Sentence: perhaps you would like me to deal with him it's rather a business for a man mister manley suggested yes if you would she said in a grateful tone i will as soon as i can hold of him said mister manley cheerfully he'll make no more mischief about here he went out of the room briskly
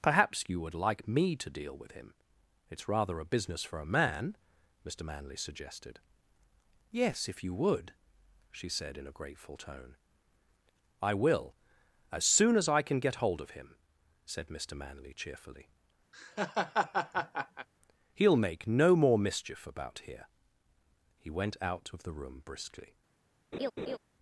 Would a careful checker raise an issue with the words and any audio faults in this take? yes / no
yes